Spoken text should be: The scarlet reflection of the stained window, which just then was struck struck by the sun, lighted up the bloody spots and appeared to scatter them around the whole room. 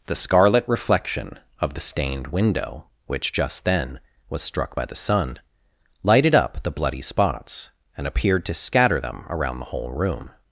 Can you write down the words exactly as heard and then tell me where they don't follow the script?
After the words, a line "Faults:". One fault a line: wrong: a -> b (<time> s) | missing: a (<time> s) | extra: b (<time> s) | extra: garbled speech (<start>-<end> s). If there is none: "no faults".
The scarlet reflection of the stained window, which just then was struck by the sun, lighted up the bloody spots and appeared to scatter them around the whole room.
Faults:
missing: struck (4.8 s)